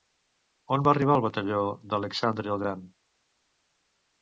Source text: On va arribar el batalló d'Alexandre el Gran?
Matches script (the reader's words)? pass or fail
pass